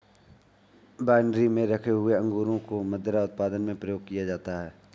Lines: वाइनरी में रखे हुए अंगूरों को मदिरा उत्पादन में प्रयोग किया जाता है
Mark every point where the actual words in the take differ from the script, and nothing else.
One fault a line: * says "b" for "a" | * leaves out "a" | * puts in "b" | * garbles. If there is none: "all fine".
all fine